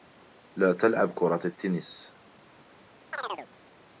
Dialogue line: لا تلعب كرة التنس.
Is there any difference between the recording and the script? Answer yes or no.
no